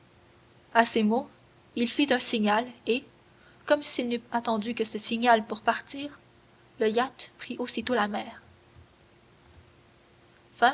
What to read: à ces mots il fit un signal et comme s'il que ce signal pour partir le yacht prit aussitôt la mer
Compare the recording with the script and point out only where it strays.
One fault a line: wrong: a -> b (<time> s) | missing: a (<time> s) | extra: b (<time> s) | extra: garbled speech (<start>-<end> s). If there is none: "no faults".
extra: n'eût attendu (4.1 s)